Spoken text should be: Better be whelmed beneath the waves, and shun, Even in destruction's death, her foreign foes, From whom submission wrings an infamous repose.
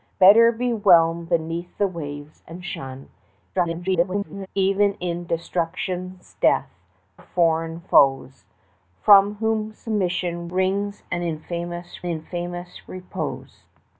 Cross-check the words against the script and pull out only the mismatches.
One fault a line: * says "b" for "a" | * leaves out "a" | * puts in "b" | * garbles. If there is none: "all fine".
* garbles
* leaves out "her"
* puts in "infamous"